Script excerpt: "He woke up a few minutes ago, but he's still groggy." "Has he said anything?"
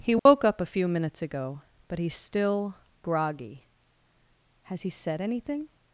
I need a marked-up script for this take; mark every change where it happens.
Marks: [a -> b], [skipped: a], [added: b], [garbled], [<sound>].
"He woke [dropout] up a few minutes ago, but he's still groggy." "Has he said anything?"